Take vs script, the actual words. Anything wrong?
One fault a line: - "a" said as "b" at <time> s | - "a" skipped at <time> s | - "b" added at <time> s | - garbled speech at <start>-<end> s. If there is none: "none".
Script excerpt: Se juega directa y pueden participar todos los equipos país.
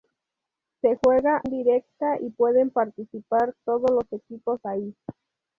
none